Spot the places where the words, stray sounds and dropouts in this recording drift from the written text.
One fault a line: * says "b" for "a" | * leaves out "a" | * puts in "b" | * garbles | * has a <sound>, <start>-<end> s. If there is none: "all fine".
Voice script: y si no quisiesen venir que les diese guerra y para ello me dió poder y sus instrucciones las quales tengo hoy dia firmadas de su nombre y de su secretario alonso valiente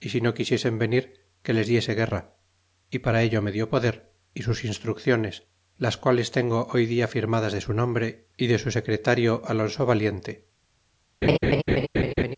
* has a laugh, 11.2-12.4 s